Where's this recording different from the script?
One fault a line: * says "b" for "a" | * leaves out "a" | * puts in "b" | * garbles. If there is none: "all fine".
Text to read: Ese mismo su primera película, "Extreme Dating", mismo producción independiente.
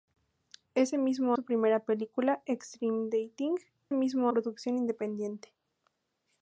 all fine